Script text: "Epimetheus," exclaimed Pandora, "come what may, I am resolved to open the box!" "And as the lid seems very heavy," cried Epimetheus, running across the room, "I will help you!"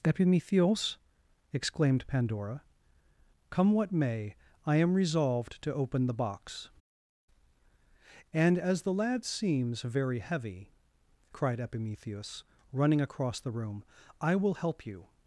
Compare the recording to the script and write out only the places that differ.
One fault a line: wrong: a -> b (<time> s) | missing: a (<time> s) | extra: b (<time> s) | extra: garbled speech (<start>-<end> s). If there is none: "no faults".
wrong: lid -> lad (8.9 s)